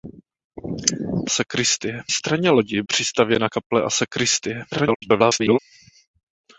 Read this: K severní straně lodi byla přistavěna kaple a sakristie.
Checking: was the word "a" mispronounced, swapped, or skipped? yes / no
no